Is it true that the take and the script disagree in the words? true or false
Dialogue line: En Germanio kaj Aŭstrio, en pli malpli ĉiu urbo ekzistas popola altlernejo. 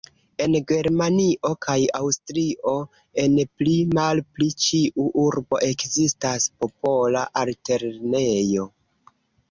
false